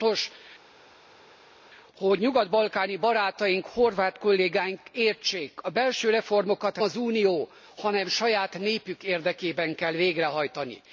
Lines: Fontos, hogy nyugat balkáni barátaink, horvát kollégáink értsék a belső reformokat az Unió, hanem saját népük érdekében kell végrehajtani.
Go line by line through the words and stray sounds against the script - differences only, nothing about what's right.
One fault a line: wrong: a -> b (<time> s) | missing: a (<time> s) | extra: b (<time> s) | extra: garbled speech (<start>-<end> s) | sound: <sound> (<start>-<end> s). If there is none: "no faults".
no faults